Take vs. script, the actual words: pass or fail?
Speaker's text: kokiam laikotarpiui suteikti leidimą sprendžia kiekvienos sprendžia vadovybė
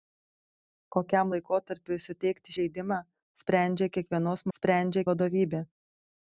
pass